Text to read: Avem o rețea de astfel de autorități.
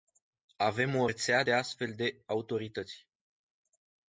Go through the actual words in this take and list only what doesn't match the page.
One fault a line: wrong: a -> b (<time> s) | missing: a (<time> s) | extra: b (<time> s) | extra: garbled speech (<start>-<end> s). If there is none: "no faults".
no faults